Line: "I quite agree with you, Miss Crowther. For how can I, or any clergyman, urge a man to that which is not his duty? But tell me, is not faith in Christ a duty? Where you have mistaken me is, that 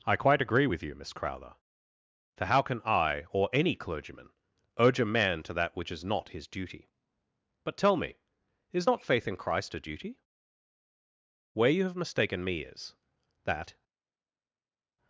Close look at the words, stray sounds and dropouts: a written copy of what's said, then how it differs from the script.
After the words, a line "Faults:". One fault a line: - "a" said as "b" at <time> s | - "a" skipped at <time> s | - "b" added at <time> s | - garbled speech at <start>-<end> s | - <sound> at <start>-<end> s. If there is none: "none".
"I quite agree with you, Miss Crowther. For how can I, or any clergyman, urge a man to that which is not his duty? But tell me, is not faith in Christ a duty? Where you have mistaken me is, that
Faults:
none